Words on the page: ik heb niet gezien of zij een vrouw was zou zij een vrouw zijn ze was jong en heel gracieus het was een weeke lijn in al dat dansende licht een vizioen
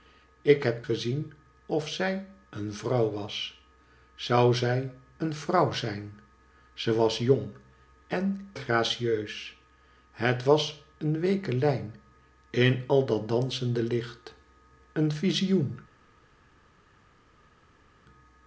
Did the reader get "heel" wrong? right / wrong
wrong